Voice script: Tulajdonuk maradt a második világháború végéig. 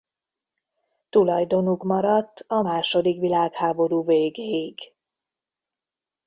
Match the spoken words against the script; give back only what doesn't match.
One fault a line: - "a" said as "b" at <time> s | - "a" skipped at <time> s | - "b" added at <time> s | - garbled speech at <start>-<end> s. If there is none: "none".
none